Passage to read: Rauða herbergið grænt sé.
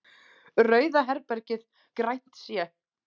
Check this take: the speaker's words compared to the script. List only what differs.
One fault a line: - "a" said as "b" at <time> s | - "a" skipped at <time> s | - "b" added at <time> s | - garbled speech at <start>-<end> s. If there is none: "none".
none